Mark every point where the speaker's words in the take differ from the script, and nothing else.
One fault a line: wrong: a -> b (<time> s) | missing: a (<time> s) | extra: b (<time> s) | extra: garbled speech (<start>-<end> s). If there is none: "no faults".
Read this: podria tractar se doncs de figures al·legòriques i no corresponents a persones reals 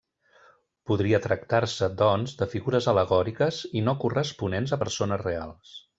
no faults